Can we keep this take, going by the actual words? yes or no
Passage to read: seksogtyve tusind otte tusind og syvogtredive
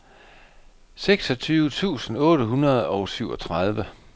no